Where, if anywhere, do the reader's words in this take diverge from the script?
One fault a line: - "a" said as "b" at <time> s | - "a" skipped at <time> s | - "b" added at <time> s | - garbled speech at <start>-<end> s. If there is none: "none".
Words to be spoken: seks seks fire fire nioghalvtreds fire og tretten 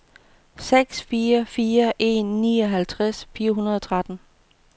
- "seks" said as "fire" at 1.0 s
- "fire" said as "en" at 2.0 s
- "hundrede" added at 3.5 s